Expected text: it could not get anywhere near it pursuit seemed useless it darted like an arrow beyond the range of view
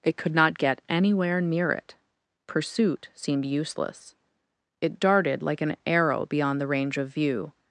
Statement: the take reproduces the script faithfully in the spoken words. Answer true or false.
true